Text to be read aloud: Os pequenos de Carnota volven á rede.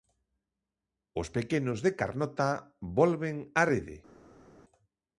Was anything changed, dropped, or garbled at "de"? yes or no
no